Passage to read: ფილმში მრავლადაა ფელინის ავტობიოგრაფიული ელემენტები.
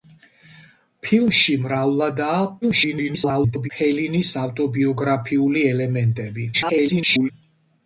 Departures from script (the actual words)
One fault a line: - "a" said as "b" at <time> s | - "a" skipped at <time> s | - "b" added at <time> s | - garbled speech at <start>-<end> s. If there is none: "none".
- garbled speech at 2.6-3.7 s
- garbled speech at 6.5-7.3 s